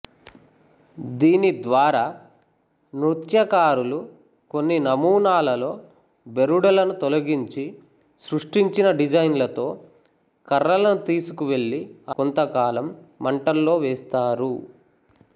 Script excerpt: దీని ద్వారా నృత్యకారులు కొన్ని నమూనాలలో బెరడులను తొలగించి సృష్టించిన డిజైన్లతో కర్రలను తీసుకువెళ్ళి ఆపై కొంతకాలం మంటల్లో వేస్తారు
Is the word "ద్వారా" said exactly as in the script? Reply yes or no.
yes